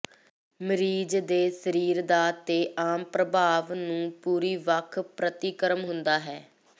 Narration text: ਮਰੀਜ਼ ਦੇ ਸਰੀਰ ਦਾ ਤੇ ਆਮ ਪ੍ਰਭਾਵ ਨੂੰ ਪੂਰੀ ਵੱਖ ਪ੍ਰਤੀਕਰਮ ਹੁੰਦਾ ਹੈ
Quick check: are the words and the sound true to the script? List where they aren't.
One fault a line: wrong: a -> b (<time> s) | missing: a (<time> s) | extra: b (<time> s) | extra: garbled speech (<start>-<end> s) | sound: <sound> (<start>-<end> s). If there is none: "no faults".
no faults